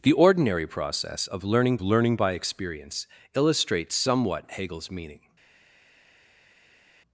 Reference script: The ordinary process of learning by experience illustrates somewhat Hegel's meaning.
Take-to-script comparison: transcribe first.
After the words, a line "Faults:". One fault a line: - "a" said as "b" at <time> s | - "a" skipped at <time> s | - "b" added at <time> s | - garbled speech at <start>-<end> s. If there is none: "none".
The ordinary process of learning learning by experience illustrates somewhat Hegel's meaning.
Faults:
- "learning" added at 1.8 s